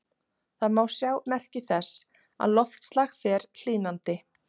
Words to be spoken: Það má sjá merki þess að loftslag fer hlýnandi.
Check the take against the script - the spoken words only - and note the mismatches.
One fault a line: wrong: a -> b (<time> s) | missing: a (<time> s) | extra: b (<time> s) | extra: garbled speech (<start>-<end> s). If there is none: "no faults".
no faults